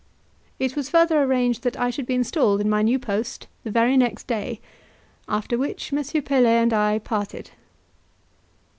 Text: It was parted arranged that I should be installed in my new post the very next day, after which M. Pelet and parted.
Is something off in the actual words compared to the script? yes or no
yes